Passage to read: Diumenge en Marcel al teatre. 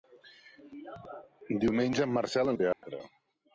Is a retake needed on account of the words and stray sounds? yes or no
yes